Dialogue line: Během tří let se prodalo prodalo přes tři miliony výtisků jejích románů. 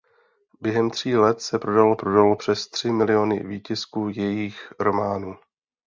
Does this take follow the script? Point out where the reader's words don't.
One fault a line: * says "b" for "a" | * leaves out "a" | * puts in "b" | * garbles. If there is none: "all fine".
all fine